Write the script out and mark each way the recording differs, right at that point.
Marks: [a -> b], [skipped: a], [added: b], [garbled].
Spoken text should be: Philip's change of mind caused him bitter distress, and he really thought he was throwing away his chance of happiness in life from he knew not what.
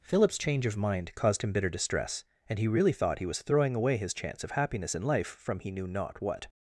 Philip's change of mind caused him bitter distress, and he really thought he was throwing away his chance of happiness in life from he knew not what.